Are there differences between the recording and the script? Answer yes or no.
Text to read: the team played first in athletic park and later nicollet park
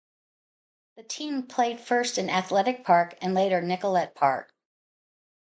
no